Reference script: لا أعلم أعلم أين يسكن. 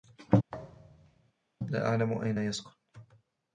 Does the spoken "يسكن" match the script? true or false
true